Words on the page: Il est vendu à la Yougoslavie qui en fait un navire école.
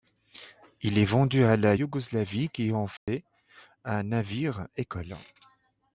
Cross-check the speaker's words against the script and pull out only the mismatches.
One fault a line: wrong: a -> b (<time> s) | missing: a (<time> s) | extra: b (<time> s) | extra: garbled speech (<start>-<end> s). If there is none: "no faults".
no faults